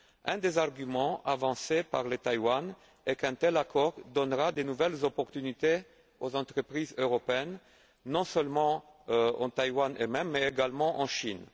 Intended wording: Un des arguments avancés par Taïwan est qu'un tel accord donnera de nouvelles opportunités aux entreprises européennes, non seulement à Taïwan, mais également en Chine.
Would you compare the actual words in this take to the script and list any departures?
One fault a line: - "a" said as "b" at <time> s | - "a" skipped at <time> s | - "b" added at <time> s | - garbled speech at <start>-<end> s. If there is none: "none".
none